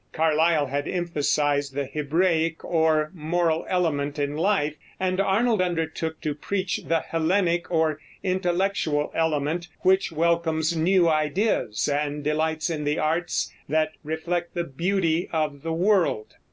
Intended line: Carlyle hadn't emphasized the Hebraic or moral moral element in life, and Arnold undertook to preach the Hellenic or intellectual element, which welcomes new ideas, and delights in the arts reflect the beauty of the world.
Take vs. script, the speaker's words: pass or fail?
fail